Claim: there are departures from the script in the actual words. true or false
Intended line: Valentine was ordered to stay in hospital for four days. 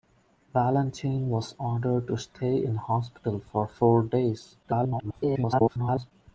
true